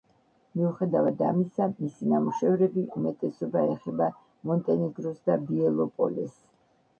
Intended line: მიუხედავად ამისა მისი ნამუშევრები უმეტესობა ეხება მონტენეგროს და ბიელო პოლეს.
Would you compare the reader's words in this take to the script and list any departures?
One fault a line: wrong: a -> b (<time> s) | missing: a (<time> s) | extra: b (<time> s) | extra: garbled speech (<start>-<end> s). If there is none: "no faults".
no faults